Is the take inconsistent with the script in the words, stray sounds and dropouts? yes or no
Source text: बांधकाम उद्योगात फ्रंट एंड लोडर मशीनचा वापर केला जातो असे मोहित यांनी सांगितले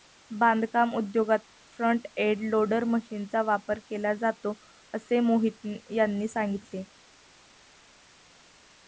no